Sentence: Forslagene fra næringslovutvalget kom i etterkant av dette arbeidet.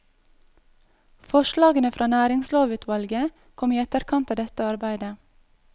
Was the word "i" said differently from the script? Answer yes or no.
no